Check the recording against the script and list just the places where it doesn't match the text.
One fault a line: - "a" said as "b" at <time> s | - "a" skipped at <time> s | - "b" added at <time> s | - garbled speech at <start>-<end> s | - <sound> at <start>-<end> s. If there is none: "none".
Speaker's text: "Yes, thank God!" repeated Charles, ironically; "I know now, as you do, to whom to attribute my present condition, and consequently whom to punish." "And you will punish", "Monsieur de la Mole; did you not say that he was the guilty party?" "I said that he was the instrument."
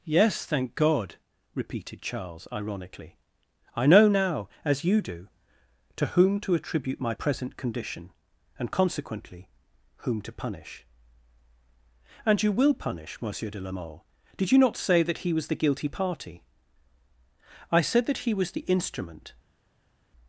none